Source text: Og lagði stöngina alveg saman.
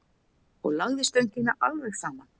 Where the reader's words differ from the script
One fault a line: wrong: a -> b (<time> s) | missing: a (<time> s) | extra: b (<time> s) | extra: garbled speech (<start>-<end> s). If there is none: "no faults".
no faults